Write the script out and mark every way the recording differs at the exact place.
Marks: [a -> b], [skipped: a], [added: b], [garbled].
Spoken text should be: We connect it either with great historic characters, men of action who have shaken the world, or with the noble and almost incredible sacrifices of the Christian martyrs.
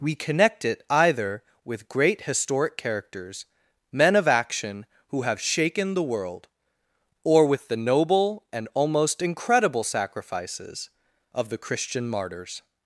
We connect it either with great historic characters, men of action who have shaken the world, or with the noble and almost incredible sacrifices of the Christian martyrs.